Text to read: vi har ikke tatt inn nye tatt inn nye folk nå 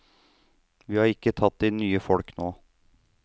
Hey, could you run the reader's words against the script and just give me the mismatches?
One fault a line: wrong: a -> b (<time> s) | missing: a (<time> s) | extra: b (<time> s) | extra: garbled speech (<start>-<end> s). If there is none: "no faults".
missing: tatt inn nye (2.0 s)